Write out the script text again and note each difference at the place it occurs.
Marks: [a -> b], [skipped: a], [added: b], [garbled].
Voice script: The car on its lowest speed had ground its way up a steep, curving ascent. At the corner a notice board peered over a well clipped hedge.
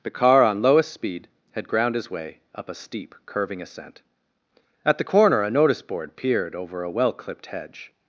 The car on [skipped: its] lowest speed had ground [its -> his] way up a steep, curving ascent. At the corner a notice board peered over a well clipped hedge.